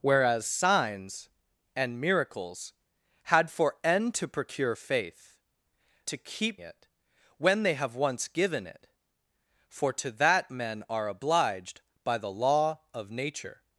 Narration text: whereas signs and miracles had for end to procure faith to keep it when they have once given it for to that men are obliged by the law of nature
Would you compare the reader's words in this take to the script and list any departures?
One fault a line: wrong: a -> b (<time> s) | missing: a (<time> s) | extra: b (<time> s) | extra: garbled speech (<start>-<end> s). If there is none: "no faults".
no faults